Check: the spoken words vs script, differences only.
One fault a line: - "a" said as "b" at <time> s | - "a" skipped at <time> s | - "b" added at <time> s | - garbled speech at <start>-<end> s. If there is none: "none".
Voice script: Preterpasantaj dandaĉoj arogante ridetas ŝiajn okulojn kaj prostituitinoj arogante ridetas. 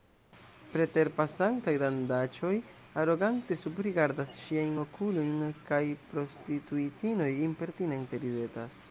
- "ridetas" said as "subrigardas" at 3.6 s
- "arogante" said as "impertinente" at 7.5 s